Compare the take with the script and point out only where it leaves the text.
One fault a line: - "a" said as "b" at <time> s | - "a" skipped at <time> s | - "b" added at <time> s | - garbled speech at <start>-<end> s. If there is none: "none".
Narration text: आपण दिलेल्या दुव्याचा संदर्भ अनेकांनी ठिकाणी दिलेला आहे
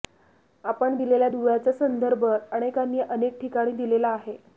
- "अनेक" added at 3.0 s